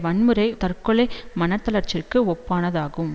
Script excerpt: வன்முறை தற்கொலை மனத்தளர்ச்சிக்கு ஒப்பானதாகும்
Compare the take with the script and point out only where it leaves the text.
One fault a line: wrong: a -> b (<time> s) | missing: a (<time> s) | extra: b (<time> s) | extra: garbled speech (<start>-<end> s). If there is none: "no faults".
no faults